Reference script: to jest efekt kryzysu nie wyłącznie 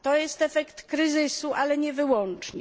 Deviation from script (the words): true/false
true